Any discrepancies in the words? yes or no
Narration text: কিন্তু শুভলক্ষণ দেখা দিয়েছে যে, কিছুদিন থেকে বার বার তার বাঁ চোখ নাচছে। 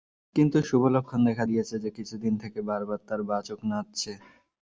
no